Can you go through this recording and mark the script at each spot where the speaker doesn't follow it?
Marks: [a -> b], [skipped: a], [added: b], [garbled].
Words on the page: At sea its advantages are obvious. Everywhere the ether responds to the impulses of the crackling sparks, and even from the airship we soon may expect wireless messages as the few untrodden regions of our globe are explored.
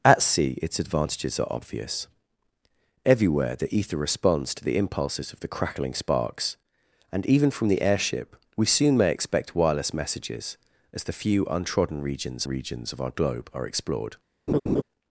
At sea its advantages are obvious. Everywhere the ether responds to the impulses of the crackling sparks, and even from the airship we soon may expect wireless messages as the few untrodden regions [added: regions] of our globe are explored.